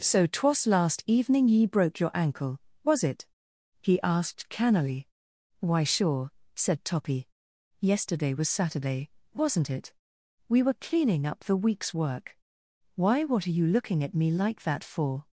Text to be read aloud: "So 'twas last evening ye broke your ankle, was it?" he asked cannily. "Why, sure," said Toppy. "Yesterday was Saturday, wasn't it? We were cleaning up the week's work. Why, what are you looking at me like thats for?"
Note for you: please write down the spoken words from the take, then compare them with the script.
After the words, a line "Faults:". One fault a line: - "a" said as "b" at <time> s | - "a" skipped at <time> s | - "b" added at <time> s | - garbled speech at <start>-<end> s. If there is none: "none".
"So 'twas last evening ye broke your ankle, was it?" he asked cannily. "Why, sure," said Toppy. "Yesterday was Saturday, wasn't it? We were cleaning up the week's work. Why, what are you looking at me like that for?"
Faults:
- "thats" said as "that" at 14.6 s